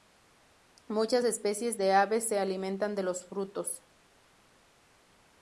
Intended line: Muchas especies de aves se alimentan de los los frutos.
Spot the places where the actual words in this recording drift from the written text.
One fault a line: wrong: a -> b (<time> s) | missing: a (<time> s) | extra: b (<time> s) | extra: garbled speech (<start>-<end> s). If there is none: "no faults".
missing: los (3.3 s)